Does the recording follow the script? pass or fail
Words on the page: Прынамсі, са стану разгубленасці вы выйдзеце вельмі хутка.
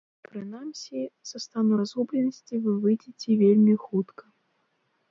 pass